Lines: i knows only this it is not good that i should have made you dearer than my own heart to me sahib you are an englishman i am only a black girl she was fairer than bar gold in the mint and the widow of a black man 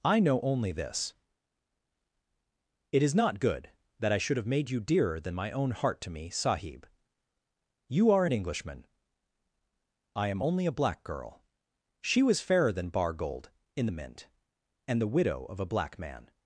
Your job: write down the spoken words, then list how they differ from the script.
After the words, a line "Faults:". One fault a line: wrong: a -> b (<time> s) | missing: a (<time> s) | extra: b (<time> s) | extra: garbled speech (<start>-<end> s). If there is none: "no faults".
i know only this it is not good that i should have made you dearer than my own heart to me sahib you are an englishman i am only a black girl she was fairer than bar gold in the mint and the widow of a black man
Faults:
wrong: knows -> know (0.2 s)